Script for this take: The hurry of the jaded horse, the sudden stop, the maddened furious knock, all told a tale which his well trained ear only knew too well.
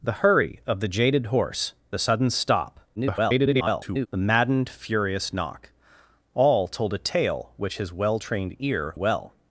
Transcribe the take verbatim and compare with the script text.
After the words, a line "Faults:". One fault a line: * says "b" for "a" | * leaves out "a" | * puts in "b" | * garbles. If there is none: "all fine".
The hurry of the jaded horse, the sudden stop, [garbled] the maddened furious knock, all told a tale which his well trained ear well.
Faults:
* garbles
* leaves out "only knew too"